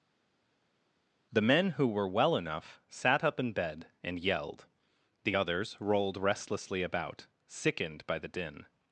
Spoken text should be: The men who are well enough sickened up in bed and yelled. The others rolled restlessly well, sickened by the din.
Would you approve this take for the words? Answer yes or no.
no